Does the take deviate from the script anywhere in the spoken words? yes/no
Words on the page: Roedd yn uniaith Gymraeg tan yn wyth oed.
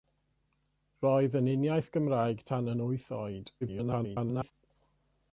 yes